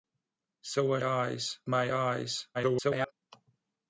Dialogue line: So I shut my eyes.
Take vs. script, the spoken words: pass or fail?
fail